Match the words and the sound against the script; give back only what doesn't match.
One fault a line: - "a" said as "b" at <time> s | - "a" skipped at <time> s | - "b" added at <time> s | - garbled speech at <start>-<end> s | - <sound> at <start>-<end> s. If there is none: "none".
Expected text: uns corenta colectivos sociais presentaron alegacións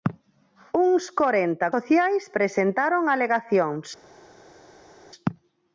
- "colectivos" skipped at 1.7 s